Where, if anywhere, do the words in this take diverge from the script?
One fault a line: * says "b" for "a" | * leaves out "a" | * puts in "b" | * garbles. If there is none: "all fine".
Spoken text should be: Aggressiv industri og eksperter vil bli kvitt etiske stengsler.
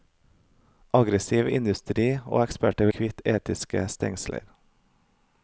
* leaves out "vil bli"